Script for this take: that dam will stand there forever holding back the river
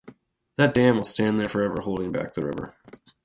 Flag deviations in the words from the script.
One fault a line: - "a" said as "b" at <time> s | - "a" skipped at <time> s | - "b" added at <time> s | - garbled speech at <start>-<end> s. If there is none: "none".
none